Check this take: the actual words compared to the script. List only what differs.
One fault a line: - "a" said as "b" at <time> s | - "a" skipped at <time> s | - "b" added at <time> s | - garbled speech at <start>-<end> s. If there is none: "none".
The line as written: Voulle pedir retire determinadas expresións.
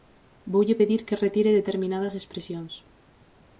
- "que" added at 1.1 s